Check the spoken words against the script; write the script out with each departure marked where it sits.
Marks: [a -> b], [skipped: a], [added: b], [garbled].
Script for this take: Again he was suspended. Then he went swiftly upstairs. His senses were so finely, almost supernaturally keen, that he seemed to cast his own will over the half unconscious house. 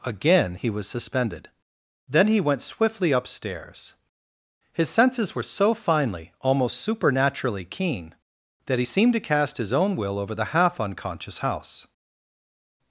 Again he was suspended. Then he went swiftly upstairs. His senses were so finely, almost supernaturally keen, that he seemed to cast his own will over the half unconscious house.